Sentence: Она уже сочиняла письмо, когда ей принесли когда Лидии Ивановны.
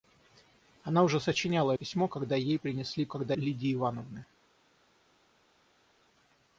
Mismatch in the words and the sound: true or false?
false